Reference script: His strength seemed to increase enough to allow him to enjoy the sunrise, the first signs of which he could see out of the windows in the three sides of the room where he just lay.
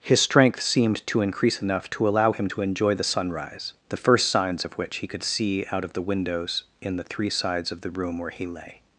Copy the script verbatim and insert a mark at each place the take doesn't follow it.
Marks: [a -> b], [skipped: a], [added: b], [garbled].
His strength seemed to increase enough to allow him to enjoy the sunrise, the first signs of which he could see out of the windows in the three sides of the room where he [skipped: just] lay.